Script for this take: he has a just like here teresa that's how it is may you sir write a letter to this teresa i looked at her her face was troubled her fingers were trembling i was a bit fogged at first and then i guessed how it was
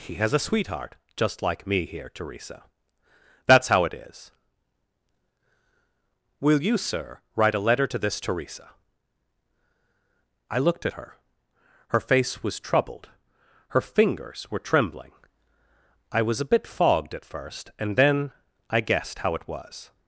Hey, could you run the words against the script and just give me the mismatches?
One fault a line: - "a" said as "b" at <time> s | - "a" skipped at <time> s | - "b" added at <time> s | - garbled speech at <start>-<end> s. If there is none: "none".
- "sweetheart" added at 0.4 s
- "me" added at 1.7 s
- "may" said as "will" at 6.4 s